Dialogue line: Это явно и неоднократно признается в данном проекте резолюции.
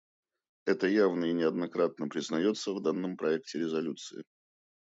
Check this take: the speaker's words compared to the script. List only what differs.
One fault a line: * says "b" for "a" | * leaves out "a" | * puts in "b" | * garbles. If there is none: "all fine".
all fine